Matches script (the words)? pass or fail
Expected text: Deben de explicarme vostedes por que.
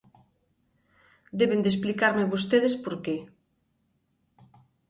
pass